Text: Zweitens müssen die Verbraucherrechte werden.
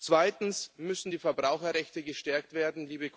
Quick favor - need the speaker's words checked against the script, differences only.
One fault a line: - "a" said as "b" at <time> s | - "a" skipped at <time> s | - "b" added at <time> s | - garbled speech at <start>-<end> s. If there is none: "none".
- "gestärkt" added at 2.0 s